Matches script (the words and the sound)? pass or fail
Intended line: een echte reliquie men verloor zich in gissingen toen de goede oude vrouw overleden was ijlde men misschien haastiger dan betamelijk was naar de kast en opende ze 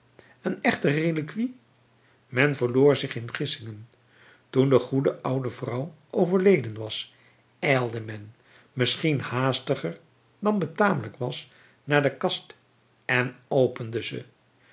pass